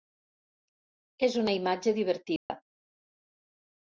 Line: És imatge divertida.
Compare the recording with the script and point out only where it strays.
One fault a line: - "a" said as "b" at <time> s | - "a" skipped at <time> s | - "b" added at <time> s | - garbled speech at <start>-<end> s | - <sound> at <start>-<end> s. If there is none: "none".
- "una" added at 1.4 s
- dropout at 2.4-2.5 s